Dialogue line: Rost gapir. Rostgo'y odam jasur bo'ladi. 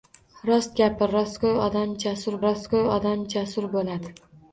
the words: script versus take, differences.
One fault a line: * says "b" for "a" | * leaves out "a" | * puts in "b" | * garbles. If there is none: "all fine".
* puts in "rostgo'y odam jasur"